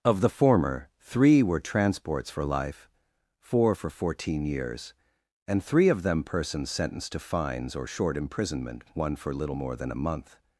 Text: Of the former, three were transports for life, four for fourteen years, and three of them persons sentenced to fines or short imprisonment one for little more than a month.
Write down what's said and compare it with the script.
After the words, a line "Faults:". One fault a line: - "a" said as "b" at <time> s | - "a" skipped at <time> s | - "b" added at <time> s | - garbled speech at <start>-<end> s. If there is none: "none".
Of the former, three were transports for life, four for fourteen years, and three of them persons sentenced to fines or short imprisonment one for little more than a month.
Faults:
none